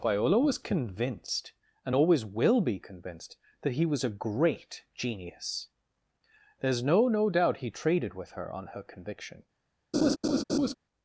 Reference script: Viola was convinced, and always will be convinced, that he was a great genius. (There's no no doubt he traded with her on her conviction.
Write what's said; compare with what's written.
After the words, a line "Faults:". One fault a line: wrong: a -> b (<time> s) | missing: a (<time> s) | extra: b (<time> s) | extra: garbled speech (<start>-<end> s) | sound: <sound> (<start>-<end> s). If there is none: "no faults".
Viola was convinced, and always will be convinced, that he was a great genius. (There's no no doubt he traded with her on her conviction.
Faults:
sound: laugh (9.9-10.7 s)